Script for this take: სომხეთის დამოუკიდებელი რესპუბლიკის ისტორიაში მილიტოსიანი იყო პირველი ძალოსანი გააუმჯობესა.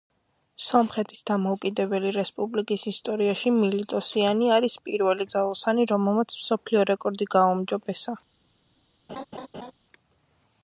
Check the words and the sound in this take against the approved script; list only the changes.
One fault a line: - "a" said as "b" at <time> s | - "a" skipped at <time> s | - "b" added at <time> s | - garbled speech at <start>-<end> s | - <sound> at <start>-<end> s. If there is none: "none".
- "იყო" said as "არის" at 4.5 s
- "რომელმაც მსოფლიო რეკორდი" added at 5.9 s
- laugh at 9.1-9.7 s